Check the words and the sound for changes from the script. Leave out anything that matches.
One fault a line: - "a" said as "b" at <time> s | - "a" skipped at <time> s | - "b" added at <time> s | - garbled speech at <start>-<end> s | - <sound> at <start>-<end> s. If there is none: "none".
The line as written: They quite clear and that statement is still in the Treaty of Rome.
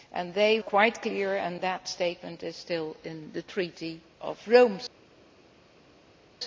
none